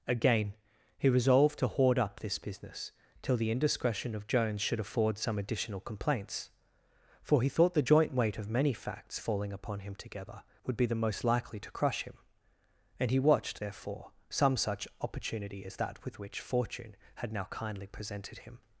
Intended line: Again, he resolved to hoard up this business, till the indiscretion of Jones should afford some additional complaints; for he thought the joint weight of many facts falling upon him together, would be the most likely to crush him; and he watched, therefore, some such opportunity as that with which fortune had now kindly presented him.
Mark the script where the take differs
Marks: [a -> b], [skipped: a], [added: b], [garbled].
Again, he resolved to hoard up this business, till the indiscretion of Jones should afford some additional complaints; for he thought the joint weight of many facts falling upon him together, would be the most likely to crush him; and he watched, therefore, some such opportunity as that with which fortune had now kindly presented him.